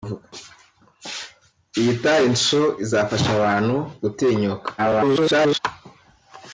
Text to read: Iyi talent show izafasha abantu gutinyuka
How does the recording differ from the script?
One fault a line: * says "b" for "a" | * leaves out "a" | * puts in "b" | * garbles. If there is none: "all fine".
* garbles